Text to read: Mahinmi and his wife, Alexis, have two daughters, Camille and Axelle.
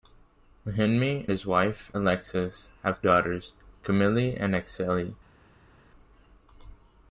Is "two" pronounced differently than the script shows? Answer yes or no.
yes